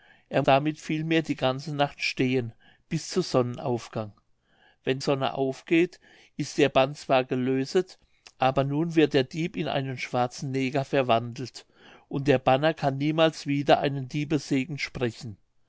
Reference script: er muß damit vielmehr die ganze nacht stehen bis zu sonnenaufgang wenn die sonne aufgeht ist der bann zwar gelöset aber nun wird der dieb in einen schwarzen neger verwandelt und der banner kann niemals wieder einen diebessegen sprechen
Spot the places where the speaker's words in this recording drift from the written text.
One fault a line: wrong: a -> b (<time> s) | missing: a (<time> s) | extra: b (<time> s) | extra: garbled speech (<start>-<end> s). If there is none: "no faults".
missing: muß (0.4 s)
missing: die (5.0 s)